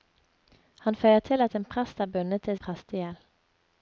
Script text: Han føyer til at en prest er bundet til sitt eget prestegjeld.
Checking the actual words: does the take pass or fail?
fail